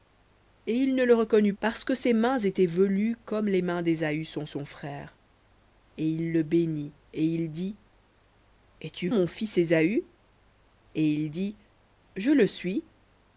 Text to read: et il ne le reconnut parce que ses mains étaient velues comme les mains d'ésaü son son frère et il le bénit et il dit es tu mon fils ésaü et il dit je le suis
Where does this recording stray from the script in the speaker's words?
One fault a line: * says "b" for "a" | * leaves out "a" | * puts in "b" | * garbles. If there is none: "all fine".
all fine